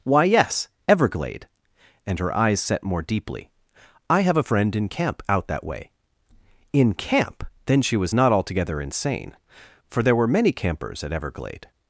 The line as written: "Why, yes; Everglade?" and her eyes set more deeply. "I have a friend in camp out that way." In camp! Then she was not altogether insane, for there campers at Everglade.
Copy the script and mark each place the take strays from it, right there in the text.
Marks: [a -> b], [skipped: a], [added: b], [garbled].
"Why, yes; Everglade?" and her eyes set more deeply. "I have a friend in camp out that way." In camp! Then she was not altogether insane, for there [added: were many] campers at Everglade.